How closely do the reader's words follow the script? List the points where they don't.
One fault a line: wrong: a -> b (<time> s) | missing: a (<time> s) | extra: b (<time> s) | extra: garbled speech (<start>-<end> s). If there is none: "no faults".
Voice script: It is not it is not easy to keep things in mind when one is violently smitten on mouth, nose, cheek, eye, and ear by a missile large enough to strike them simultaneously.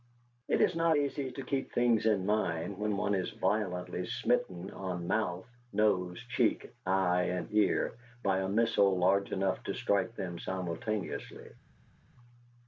missing: it is not (1.0 s)